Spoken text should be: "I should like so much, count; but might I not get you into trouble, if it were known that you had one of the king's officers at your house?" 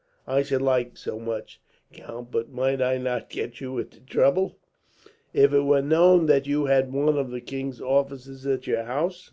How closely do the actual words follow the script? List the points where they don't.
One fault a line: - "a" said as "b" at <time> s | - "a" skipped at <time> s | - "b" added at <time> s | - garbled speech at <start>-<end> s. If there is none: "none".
none